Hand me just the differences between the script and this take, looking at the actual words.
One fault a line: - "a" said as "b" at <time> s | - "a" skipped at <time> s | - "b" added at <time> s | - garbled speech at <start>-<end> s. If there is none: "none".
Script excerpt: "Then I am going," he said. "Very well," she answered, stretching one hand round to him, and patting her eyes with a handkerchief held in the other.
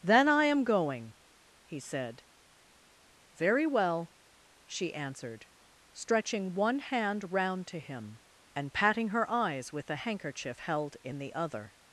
none